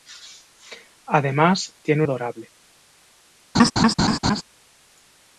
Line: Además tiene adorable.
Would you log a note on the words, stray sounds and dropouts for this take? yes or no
yes